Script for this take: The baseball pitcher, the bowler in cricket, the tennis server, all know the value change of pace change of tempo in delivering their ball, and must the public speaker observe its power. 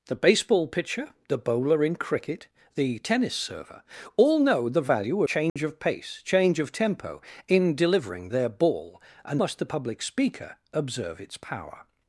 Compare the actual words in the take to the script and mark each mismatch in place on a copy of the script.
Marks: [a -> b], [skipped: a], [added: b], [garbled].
The baseball pitcher, the bowler in cricket, the tennis server, all know the value change of pace change of tempo in delivering their ball, and must the public speaker observe its power.